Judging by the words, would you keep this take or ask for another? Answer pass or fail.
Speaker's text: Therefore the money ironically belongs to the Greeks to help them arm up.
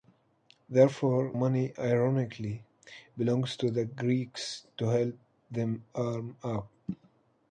fail